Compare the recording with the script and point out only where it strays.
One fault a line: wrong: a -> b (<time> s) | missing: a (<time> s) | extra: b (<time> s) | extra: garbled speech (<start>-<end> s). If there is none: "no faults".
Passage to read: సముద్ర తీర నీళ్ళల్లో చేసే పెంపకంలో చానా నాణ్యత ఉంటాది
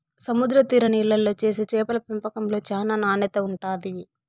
extra: చేపల (1.7 s)